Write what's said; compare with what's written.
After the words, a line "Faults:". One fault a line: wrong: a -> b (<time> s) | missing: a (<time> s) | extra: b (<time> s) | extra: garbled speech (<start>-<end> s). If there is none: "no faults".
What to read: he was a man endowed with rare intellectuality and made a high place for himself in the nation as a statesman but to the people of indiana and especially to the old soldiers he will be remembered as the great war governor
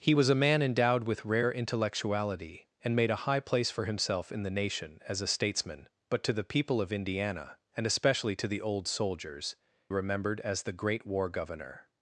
he was a man endowed with rare intellectuality and made a high place for himself in the nation as a statesman but to the people of indiana and especially to the old soldiers remembered as the great war governor
Faults:
missing: he will be (9.6 s)